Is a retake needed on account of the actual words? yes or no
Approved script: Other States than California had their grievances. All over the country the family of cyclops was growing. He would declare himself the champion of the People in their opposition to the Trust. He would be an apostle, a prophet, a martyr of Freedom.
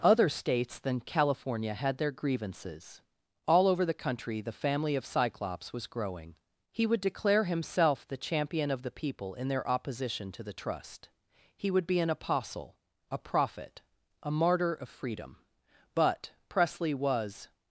yes